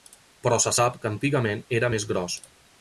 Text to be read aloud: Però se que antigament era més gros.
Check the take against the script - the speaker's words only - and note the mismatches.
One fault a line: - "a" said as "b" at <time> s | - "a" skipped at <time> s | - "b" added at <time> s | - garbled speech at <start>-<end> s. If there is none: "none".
- "sap" added at 0.7 s